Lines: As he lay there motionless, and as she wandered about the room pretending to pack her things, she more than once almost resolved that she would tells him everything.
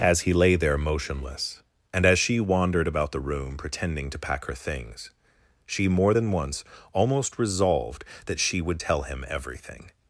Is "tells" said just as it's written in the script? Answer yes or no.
no